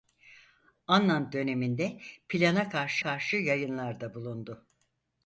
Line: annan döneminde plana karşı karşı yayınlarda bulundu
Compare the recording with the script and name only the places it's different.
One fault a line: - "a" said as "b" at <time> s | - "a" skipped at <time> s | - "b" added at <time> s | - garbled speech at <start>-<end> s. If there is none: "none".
none